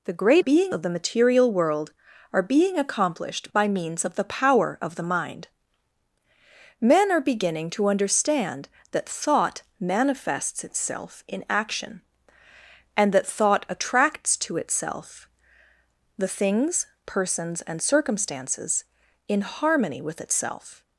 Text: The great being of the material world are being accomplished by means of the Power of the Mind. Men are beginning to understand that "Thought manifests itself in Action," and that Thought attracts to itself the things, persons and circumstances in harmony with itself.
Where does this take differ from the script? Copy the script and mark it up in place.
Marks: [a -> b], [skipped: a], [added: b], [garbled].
The great being of the material world are being accomplished by means of the Power of the Mind. Men are beginning to understand that "Thought manifests itself in Action," and that Thought attracts to itself the things, persons and circumstances in harmony with itself.